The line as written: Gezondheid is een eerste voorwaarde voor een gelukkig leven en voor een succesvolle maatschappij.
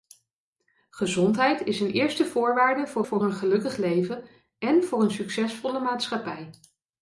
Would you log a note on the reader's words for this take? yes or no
yes